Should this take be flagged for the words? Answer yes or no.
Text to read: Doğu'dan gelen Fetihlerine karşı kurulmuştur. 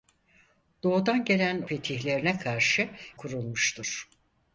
no